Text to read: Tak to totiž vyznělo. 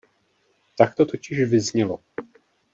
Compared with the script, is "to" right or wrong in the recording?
right